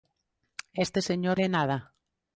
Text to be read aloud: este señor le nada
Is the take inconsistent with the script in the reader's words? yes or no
no